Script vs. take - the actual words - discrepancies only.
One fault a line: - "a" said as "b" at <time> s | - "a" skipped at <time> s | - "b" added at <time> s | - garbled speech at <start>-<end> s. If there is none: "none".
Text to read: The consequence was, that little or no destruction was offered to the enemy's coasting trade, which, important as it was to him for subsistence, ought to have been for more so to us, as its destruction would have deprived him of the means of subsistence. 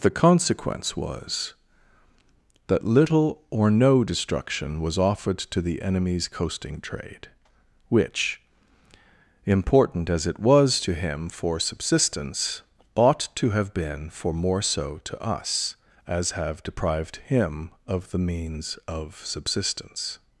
- "its destruction would" skipped at 16.3 s